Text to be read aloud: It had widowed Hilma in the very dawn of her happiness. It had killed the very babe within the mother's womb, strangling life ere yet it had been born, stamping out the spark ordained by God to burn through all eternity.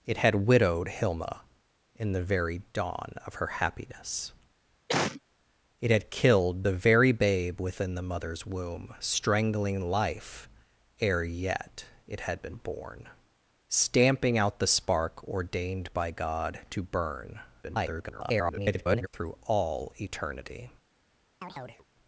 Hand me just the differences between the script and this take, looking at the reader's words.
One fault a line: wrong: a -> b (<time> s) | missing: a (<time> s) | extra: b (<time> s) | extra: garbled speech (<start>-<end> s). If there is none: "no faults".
extra: garbled speech (17.6-19.1 s)